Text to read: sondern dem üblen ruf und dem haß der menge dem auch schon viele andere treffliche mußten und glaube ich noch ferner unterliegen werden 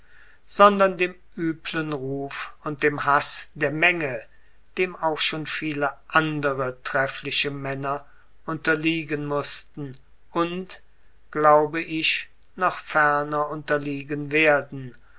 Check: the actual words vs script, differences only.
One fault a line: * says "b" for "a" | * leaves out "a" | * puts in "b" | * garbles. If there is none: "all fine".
* puts in "männer unterliegen"